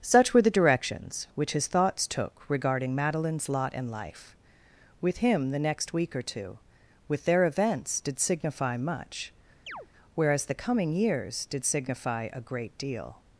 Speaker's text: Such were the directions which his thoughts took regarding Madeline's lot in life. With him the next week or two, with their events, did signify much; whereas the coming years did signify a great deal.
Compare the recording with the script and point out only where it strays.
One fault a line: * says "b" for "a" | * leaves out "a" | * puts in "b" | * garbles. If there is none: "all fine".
all fine